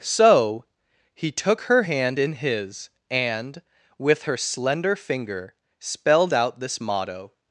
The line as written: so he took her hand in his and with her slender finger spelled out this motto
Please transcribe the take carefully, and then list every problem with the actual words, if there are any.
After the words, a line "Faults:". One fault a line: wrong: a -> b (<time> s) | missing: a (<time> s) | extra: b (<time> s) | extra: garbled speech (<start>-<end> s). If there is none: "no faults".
so he took her hand in his and with her slender finger spelled out this motto
Faults:
no faults